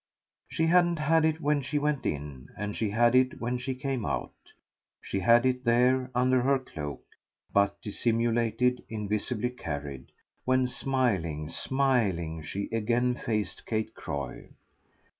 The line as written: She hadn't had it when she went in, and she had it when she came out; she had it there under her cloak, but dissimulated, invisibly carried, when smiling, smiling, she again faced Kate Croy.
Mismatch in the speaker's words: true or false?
false